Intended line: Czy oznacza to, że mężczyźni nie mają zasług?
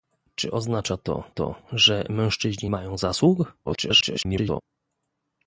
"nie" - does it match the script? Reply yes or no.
no